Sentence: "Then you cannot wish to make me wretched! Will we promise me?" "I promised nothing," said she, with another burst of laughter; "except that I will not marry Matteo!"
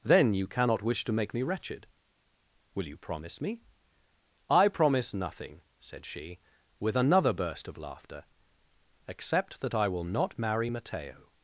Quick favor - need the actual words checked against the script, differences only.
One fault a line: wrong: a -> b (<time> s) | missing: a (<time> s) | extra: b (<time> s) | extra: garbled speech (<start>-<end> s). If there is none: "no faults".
wrong: we -> you (2.9 s)
wrong: promised -> promise (4.7 s)